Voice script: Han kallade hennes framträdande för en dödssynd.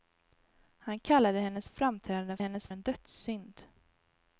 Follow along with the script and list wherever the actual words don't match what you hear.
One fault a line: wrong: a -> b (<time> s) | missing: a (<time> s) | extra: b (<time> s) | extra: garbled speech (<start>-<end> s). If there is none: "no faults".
wrong: för -> hennes (2.4 s)